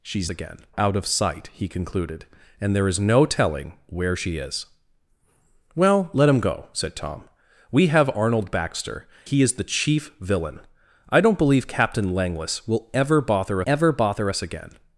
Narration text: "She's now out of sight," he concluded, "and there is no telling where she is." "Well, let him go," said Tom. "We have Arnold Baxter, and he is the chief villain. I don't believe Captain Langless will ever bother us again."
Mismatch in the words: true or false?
true